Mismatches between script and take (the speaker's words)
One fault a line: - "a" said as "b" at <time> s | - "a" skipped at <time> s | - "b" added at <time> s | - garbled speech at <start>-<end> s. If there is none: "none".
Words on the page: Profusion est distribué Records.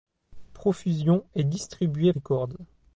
none